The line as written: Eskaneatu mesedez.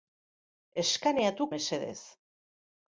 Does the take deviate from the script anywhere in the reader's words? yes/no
no